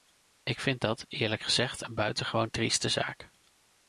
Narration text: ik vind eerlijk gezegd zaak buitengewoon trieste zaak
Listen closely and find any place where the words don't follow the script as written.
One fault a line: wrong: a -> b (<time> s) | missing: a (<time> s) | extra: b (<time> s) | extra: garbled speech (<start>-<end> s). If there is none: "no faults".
extra: dat (0.8 s)
wrong: zaak -> een (1.8 s)